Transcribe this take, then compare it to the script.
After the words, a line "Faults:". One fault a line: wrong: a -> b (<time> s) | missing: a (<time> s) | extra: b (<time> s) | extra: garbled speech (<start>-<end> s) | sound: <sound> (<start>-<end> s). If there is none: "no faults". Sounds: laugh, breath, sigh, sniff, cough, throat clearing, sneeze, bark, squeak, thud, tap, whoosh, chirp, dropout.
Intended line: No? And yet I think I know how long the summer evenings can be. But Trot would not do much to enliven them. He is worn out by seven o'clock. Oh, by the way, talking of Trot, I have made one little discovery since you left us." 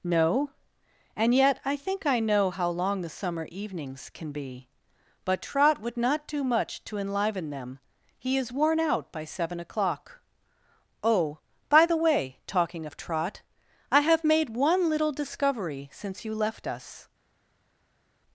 No? And yet I think I know how long the summer evenings can be. But Trot would not do much to enliven them. He is worn out by seven o'clock. Oh, by the way, talking of Trot, I have made one little discovery since you left us."
Faults:
no faults